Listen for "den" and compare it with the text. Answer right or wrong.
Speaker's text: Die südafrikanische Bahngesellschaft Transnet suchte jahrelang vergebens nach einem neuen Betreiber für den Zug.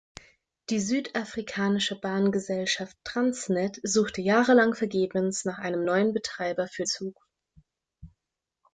wrong